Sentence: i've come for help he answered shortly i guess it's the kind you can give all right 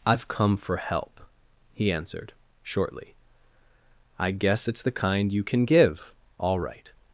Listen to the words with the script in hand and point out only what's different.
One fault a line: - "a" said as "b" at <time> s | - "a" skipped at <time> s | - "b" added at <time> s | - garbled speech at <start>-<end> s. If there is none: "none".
none